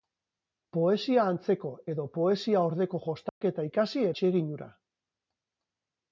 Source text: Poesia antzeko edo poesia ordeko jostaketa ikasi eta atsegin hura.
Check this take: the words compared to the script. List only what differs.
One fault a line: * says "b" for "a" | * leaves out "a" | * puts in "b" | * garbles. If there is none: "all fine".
* leaves out "eta"